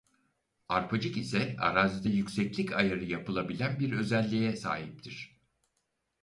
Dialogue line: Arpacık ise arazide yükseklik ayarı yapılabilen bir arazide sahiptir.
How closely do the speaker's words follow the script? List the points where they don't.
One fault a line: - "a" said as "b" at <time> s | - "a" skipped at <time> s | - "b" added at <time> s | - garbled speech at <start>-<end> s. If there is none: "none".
- "arazide" said as "özelliğe" at 3.9 s